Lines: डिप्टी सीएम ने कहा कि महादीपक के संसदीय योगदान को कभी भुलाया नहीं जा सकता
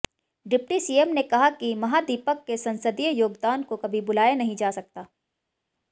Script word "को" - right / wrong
right